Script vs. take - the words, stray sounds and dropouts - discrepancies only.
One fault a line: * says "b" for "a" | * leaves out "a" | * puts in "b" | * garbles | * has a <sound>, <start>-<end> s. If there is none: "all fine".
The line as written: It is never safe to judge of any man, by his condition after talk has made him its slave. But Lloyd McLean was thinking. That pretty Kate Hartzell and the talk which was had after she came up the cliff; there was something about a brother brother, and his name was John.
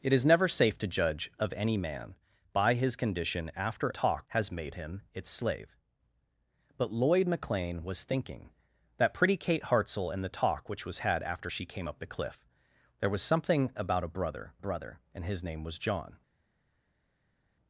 all fine